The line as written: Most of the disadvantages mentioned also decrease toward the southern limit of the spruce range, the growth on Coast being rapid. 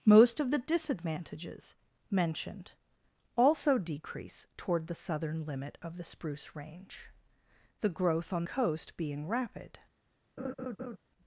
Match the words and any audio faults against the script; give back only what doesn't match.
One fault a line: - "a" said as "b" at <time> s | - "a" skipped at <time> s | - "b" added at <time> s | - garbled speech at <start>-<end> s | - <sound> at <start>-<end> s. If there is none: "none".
- laugh at 10.4-11.0 s